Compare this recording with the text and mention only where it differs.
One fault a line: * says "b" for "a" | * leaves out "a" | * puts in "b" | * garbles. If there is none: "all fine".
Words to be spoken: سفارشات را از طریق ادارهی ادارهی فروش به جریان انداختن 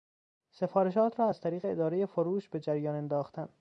* leaves out "ادارهی"